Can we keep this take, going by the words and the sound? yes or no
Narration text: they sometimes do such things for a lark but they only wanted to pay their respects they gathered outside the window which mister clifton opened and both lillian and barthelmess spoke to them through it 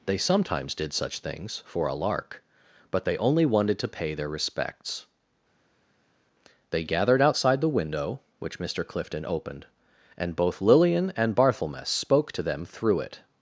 no